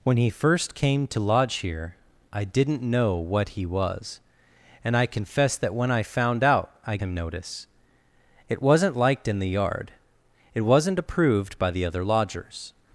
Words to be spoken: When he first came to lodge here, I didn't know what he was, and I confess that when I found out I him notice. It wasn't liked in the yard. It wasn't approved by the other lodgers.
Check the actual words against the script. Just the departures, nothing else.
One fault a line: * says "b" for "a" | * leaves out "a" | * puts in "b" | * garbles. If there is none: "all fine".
all fine